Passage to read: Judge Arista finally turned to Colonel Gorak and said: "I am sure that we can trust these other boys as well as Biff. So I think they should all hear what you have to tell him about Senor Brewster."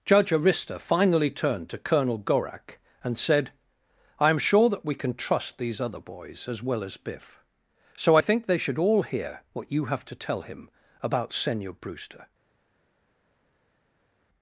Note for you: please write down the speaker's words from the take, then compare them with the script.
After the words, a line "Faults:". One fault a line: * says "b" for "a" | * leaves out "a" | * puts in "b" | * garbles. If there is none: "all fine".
Judge Arista finally turned to Colonel Gorak and said: "I am sure that we can trust these other boys as well as Biff. So I think they should all hear what you have to tell him about Senor Brewster."
Faults:
all fine